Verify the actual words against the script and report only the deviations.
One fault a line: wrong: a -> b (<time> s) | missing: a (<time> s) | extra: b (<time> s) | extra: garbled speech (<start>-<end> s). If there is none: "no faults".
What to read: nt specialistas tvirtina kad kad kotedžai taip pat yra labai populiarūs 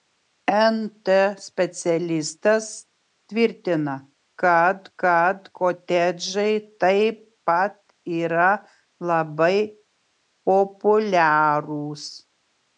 no faults